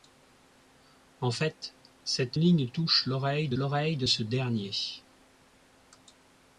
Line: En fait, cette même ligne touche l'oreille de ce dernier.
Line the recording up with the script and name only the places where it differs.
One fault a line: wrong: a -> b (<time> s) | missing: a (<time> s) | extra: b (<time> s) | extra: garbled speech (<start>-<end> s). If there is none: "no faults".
missing: même (2.4 s)
extra: l'oreille de (3.5 s)